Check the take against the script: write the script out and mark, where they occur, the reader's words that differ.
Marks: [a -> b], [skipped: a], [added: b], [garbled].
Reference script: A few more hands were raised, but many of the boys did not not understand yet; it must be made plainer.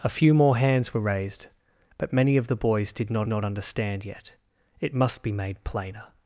A few more hands were raised, but many of the boys did not not understand yet; it must be made plainer.